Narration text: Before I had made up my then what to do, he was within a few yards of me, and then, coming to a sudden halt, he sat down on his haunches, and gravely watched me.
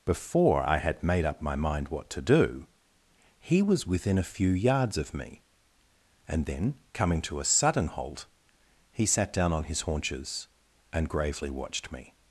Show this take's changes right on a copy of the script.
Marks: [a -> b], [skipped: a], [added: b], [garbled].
Before I had made up my [then -> mind] what to do, he was within a few yards of me, and then, coming to a sudden halt, he sat down on his haunches, and gravely watched me.